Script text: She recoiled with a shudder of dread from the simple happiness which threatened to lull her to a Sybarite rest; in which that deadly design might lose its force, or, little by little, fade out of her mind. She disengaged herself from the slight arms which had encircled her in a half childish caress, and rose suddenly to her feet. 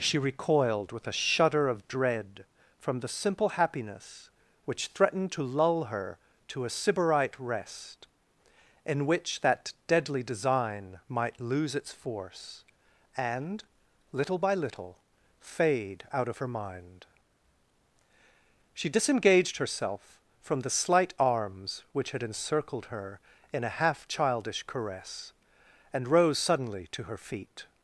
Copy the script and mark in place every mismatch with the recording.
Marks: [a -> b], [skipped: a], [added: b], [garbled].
She recoiled with a shudder of dread from the simple happiness which threatened to lull her to a Sybarite rest; in which that deadly design might lose its force, [or, -> and] little by little, fade out of her mind. She disengaged herself from the slight arms which had encircled her in a half childish caress, and rose suddenly to her feet.